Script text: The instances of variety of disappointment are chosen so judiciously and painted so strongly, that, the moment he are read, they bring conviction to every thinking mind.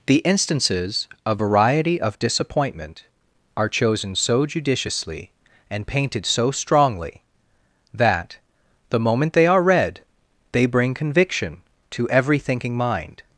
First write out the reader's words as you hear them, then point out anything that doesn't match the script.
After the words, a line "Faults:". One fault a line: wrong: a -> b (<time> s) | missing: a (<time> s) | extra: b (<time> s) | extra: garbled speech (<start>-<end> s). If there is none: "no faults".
The instances of variety of disappointment are chosen so judiciously and painted so strongly, that, the moment they are read, they bring conviction to every thinking mind.
Faults:
wrong: he -> they (9.3 s)